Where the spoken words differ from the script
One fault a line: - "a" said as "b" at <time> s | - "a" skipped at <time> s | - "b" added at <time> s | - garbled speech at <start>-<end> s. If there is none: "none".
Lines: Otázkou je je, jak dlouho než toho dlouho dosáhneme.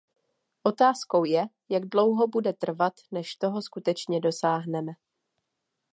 - "je" skipped at 1.5 s
- "bude trvat" added at 2.3 s
- "dlouho" said as "skutečně" at 3.6 s